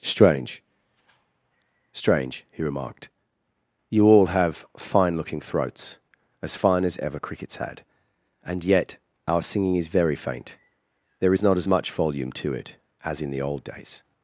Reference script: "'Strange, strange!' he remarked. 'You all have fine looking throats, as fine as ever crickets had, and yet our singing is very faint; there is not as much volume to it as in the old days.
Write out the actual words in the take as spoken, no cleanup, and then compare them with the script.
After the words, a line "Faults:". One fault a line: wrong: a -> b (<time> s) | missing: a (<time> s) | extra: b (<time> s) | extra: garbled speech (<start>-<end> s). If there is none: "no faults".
"'Strange, strange!' he remarked. 'You all have fine looking throats, as fine as ever crickets had, and yet our singing is very faint; there is not as much volume to it as in the old days.
Faults:
no faults